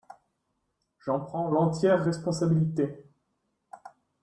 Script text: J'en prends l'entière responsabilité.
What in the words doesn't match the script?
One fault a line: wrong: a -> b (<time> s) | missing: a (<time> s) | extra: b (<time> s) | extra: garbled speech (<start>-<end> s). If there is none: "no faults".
no faults